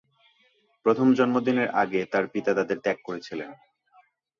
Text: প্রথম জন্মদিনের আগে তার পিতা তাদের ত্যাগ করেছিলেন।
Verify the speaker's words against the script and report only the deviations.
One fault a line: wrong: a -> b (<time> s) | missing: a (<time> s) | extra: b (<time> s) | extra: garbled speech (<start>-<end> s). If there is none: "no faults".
no faults